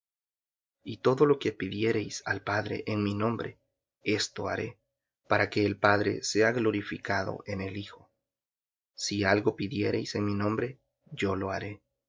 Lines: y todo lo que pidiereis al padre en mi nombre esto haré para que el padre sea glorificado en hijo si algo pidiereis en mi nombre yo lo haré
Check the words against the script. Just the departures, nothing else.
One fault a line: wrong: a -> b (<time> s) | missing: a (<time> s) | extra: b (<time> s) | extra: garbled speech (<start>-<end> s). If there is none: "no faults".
extra: el (7.6 s)